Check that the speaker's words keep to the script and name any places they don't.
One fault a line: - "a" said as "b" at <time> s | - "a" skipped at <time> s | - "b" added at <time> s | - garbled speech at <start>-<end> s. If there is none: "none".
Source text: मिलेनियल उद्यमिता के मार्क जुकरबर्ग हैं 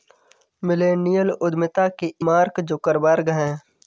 none